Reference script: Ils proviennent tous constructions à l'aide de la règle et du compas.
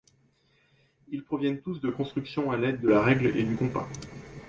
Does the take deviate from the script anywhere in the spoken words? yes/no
yes